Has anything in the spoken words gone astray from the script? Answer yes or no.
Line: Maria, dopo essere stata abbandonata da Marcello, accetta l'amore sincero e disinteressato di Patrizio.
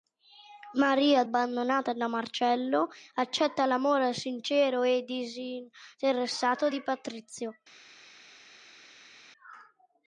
yes